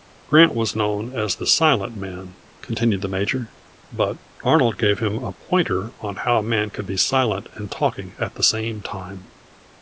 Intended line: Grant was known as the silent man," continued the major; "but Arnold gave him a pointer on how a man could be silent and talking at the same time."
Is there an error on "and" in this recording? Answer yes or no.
no